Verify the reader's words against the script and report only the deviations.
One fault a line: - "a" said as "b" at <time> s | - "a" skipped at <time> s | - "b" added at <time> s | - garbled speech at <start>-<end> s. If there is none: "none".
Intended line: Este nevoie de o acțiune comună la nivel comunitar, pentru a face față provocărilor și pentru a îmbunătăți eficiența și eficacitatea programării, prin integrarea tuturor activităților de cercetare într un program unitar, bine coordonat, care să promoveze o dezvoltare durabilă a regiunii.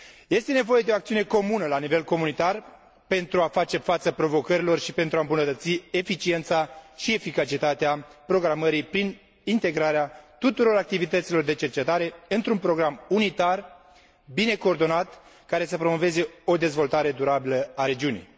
none